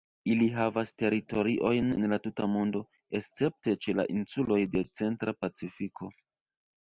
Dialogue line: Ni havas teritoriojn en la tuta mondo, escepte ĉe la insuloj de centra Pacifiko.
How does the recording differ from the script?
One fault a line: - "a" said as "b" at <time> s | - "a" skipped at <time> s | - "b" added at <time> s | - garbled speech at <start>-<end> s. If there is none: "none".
- "Ni" said as "Ili" at 0.3 s